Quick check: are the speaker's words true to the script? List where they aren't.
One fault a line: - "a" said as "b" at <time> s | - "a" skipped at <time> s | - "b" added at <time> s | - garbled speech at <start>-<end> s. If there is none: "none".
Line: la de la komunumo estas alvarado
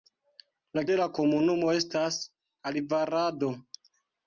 none